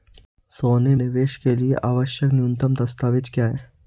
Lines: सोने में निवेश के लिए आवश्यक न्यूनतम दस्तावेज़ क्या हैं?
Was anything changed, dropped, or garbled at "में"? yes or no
yes